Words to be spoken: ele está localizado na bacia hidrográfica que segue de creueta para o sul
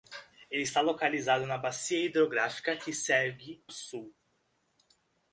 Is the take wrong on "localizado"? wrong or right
right